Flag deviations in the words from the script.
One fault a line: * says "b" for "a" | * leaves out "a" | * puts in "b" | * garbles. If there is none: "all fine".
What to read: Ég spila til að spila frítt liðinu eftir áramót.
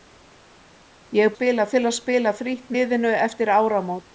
all fine